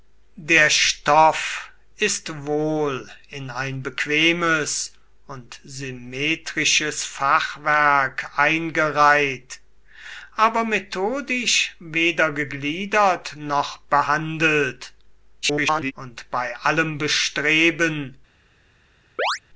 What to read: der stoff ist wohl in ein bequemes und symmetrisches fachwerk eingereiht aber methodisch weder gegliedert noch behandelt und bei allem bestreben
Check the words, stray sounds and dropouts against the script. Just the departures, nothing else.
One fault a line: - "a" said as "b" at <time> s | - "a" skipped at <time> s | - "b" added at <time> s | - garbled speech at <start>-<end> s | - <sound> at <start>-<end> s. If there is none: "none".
- garbled speech at 15.4-15.9 s
- chirp at 19.2-19.4 s